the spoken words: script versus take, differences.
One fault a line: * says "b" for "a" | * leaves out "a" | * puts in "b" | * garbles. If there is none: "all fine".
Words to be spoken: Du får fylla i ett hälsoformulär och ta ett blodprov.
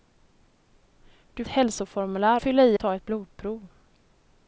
* says "hälsoformulär" for "får"
* leaves out "ett hälsoformulär och"